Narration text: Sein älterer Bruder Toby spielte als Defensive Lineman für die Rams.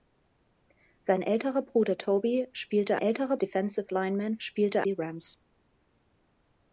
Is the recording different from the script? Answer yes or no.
yes